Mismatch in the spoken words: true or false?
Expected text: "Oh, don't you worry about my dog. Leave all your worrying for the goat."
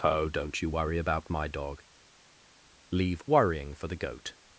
true